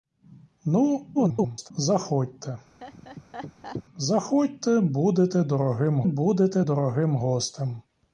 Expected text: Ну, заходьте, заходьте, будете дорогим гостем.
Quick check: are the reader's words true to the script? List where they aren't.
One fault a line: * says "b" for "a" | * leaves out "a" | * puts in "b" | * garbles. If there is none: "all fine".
* garbles
* puts in "будете дорогим"